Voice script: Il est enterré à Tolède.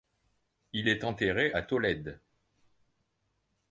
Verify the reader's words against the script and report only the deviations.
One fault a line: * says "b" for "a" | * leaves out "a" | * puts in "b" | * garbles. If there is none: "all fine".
all fine